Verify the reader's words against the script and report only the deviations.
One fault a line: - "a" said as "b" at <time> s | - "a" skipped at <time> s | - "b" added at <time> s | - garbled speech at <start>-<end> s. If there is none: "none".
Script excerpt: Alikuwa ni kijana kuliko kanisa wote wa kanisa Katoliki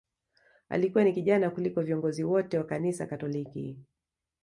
- "kanisa" said as "viongozi" at 1.8 s